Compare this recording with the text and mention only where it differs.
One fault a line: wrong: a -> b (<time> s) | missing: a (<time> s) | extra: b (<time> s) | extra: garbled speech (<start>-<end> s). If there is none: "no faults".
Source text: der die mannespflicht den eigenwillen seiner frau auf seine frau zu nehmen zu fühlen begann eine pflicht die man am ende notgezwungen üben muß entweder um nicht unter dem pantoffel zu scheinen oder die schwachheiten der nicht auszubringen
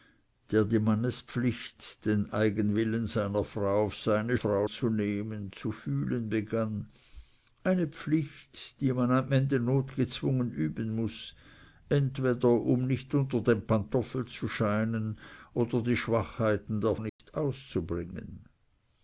no faults